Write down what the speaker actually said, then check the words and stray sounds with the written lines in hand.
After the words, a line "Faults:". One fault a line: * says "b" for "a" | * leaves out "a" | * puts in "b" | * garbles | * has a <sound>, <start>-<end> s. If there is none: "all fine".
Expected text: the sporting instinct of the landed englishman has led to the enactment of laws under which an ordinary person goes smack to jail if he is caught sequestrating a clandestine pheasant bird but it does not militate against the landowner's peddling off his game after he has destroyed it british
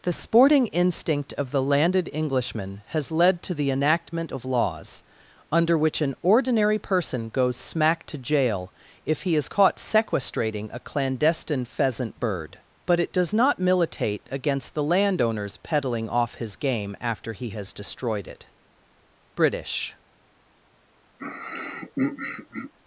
the sporting instinct of the landed englishman has led to the enactment of laws under which an ordinary person goes smack to jail if he is caught sequestrating a clandestine pheasant bird but it does not militate against the landowner's peddling off his game after he has destroyed it british
Faults:
* has a throat clearing, 21.2-22.7 s